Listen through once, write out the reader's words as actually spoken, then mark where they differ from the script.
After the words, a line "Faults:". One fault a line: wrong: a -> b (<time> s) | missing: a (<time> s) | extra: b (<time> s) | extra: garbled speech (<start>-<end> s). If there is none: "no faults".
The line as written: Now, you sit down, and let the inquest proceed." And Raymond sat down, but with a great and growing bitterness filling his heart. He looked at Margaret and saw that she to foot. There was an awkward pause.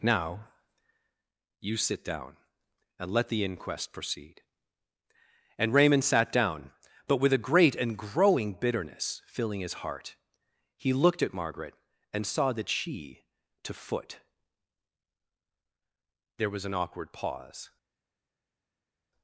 Now, you sit down, and let the inquest proceed." And Raymond sat down, but with a great and growing bitterness filling his heart. He looked at Margaret and saw that she to foot. There was an awkward pause.
Faults:
no faults